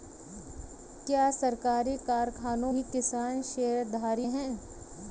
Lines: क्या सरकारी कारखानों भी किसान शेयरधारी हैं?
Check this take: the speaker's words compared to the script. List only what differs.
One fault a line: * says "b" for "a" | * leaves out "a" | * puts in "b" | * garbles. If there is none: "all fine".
all fine